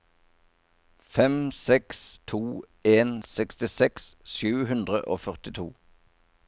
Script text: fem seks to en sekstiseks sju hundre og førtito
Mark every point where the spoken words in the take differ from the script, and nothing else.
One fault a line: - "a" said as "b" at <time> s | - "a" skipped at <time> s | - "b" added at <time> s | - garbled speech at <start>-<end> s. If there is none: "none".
none